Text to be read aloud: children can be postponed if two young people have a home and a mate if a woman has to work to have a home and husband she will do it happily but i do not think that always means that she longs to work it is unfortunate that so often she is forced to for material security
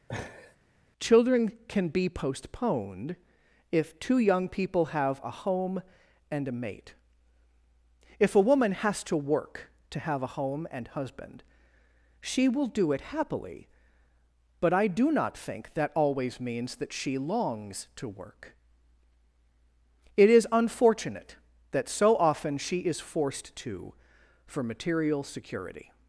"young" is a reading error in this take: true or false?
false